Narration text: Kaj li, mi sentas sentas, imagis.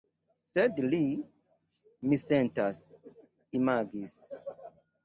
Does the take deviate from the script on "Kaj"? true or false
true